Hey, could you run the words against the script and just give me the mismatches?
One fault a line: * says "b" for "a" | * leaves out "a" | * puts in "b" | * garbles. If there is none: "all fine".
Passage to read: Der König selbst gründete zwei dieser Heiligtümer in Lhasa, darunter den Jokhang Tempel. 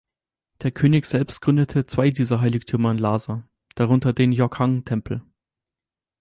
all fine